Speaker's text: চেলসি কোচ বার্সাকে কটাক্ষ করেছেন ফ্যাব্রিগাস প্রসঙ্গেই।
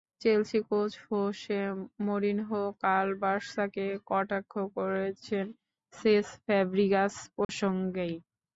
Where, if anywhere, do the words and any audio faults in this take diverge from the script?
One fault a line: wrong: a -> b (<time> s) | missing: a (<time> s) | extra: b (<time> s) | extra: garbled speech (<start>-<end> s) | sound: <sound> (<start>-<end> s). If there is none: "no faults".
extra: হোসে মরিনহো কাল (1.1 s)
extra: সেস (5.9 s)
sound: dropout (7.4-7.5 s)